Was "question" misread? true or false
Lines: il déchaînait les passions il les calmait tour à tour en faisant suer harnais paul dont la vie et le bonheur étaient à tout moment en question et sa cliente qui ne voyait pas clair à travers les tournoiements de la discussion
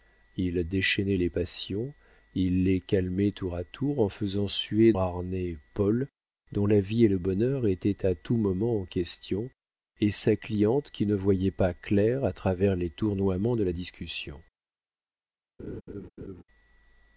false